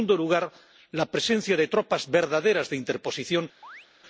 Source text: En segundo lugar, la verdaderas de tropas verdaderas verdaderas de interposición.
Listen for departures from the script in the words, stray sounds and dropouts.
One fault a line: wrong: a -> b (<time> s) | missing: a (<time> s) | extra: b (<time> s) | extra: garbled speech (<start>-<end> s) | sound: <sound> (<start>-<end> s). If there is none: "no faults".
wrong: verdaderas -> presencia (1.1 s)
missing: verdaderas (2.7 s)
sound: chirp (3.6-3.9 s)